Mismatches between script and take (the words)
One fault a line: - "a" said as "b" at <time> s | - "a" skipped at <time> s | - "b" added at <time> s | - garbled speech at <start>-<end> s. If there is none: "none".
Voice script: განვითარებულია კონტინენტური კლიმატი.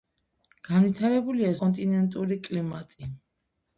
none